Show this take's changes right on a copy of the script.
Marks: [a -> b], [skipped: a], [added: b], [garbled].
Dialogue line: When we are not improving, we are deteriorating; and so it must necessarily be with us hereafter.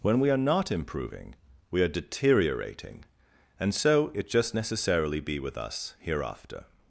When we are not improving, we are deteriorating; and so it [must -> just] necessarily be with us hereafter.